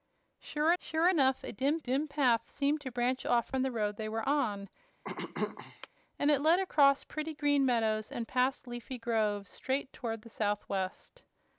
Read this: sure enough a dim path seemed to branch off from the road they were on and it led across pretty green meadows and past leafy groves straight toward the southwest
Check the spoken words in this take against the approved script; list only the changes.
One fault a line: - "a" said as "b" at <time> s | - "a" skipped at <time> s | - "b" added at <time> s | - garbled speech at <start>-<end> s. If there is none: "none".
- "sure" added at 0.8 s
- "dim" added at 1.8 s